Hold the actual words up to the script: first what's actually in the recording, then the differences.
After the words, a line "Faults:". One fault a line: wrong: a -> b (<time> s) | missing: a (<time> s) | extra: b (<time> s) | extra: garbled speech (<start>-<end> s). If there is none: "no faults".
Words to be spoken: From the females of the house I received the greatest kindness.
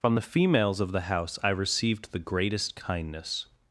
From the females of the house I received the greatest kindness.
Faults:
no faults